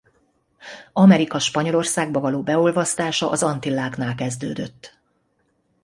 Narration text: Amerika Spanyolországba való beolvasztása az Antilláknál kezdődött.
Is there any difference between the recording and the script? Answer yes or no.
no